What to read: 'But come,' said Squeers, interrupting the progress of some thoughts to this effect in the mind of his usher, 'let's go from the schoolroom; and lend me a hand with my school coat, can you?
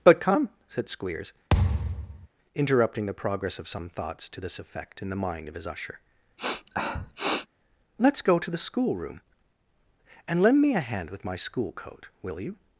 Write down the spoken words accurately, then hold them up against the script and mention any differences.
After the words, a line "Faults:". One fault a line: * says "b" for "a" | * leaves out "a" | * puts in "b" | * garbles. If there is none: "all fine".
'But come,' said Squeers, interrupting the progress of some thoughts to this effect in the mind of his usher, 'let's go to the schoolroom; and lend me a hand with my school coat, will you?
Faults:
* says "to" for "from"
* says "will" for "can"